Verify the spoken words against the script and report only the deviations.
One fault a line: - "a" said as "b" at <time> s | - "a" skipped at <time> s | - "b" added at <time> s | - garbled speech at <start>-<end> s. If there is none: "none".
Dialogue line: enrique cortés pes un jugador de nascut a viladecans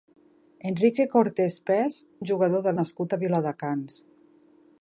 none